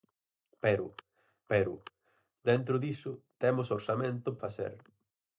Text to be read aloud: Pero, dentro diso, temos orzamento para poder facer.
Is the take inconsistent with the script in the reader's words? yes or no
yes